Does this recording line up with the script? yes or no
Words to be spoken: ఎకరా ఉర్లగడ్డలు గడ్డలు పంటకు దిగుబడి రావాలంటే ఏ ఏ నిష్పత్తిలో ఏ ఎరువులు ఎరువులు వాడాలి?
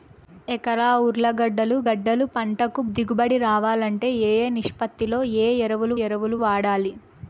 yes